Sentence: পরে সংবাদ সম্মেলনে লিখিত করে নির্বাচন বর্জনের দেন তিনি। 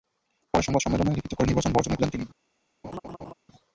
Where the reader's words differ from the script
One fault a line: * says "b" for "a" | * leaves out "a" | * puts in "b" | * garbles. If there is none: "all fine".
all fine